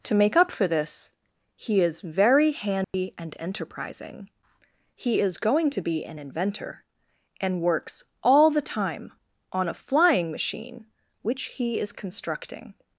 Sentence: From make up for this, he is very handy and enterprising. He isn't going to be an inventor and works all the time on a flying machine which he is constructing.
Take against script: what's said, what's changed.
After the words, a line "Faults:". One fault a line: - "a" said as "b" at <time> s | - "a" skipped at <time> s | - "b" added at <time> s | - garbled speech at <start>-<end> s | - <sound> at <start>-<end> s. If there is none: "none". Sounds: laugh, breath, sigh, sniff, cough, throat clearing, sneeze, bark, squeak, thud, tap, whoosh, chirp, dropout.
To make up for this, he is very handy and enterprising. He is going to be an inventor and works all the time on a flying machine which he is constructing.
Faults:
- "From" said as "To" at 0.0 s
- dropout at 2.8-2.9 s
- "isn't" said as "is" at 5.2 s